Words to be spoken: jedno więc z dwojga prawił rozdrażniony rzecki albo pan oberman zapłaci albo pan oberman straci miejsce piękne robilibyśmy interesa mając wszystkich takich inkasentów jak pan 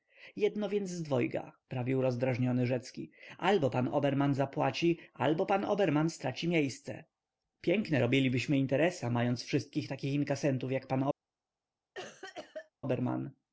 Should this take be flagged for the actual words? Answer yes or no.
no